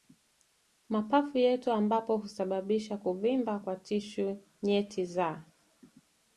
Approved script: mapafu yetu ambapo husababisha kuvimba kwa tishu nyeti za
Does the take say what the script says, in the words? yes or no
yes